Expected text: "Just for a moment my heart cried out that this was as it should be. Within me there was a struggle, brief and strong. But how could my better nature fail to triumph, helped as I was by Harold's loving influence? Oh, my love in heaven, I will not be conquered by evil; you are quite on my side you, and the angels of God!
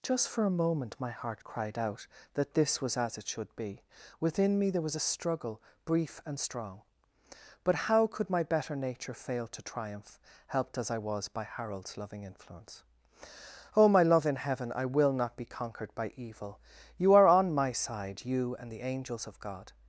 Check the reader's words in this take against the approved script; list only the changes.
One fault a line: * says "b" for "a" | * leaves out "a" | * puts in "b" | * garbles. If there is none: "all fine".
* leaves out "quite"